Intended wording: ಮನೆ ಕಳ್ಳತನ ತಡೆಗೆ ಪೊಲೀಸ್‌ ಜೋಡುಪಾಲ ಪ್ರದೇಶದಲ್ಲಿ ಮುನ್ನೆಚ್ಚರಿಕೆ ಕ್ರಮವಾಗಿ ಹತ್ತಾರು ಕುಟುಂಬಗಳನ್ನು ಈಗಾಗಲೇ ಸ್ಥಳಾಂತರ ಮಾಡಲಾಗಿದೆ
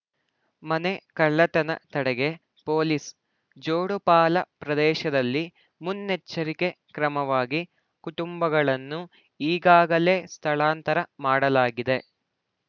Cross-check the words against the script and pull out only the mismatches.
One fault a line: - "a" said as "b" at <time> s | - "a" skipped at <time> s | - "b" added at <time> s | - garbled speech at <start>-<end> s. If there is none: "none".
- "ಹತ್ತಾರು" skipped at 7.6 s